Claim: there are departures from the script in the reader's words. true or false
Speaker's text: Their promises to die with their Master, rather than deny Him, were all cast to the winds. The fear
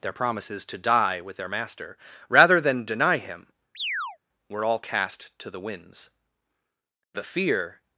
false